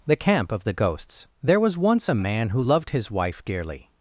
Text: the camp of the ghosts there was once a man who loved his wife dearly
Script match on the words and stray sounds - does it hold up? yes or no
yes